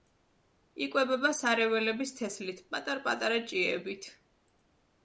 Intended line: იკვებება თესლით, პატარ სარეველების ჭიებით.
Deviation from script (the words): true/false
true